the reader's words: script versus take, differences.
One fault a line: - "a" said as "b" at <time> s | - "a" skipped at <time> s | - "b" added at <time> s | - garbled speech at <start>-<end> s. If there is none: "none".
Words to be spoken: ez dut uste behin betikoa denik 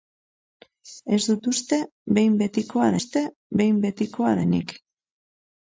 - "uste behin betikoa" added at 3.0 s